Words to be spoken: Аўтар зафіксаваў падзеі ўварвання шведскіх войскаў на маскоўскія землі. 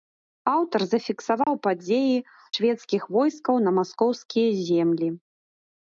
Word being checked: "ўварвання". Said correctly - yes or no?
no